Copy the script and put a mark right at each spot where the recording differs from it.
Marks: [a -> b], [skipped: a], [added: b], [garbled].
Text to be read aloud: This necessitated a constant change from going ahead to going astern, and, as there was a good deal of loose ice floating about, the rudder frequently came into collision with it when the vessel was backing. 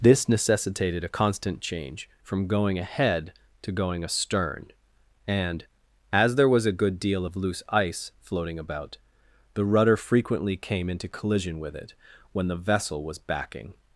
This necessitated a constant change from going ahead to going astern, and, as there was a good deal of loose ice floating about, the rudder frequently came into collision with it when the vessel was backing.